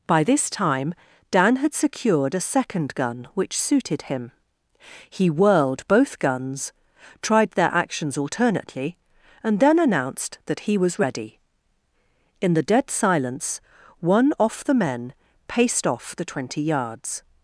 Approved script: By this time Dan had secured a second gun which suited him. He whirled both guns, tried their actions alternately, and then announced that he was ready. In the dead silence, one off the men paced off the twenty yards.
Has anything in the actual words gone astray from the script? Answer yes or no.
no